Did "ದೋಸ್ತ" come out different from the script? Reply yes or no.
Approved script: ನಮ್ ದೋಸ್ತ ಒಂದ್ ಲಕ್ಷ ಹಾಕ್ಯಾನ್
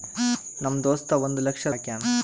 no